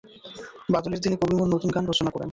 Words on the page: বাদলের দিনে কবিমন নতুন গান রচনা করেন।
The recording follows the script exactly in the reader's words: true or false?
true